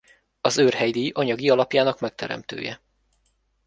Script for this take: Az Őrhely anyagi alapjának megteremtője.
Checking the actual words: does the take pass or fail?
fail